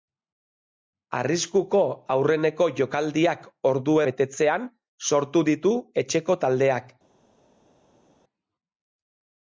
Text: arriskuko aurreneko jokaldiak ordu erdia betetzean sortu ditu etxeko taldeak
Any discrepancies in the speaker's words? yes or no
yes